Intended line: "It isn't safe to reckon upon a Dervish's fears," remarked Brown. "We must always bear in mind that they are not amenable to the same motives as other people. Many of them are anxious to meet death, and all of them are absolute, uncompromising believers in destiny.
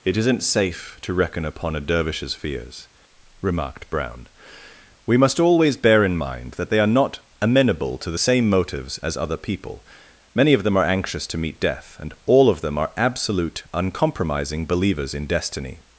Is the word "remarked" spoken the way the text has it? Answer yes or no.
yes